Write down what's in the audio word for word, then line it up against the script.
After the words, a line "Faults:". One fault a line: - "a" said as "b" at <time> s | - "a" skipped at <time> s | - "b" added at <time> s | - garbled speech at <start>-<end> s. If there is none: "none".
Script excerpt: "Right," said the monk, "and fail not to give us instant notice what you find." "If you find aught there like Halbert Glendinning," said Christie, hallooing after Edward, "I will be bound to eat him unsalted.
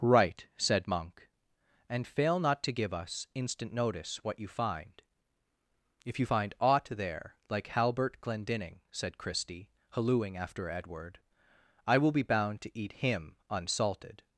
"Right," said monk, "and fail not to give us instant notice what you find." "If you find aught there like Halbert Glendinning," said Christie, hallooing after Edward, "I will be bound to eat him unsalted.
Faults:
- "the" skipped at 0.9 s